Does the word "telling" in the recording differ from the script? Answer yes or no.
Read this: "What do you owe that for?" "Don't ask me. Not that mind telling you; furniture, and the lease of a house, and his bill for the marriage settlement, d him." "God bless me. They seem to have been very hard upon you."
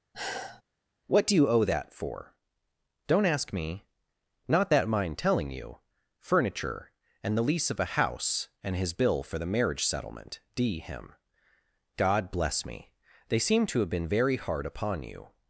no